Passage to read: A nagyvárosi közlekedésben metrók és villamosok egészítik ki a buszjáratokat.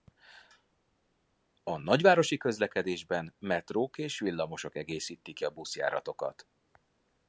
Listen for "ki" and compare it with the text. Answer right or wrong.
right